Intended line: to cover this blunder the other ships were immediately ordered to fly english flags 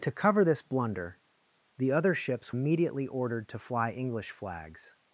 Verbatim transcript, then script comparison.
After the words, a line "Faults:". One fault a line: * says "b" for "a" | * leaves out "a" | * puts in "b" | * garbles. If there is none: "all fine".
to cover this blunder the other ships immediately ordered to fly english flags
Faults:
* leaves out "were"